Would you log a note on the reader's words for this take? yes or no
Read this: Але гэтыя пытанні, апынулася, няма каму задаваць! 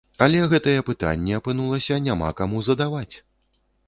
no